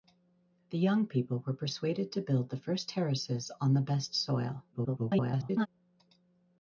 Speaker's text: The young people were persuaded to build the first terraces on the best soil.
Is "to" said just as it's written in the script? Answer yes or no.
yes